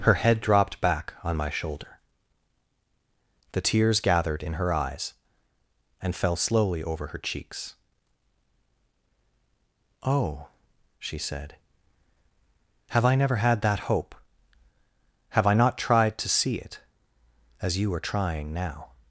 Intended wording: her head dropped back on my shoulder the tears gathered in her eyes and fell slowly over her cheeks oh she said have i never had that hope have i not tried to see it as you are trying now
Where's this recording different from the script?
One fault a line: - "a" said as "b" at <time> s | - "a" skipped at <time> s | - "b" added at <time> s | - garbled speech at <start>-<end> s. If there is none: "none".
none